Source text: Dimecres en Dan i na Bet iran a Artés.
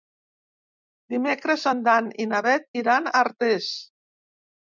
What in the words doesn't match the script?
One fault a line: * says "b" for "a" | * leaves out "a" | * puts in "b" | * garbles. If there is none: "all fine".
all fine